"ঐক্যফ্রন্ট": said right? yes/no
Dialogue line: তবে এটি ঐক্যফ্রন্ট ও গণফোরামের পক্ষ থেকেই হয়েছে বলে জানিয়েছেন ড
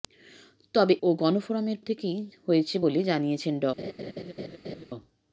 no